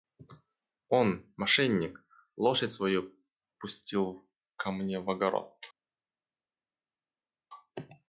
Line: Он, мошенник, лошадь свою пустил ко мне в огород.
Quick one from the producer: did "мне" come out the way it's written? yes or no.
yes